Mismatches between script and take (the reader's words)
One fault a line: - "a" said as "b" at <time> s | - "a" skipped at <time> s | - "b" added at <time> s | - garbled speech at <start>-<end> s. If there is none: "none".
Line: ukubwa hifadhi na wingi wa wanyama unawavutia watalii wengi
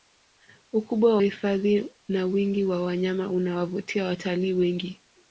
none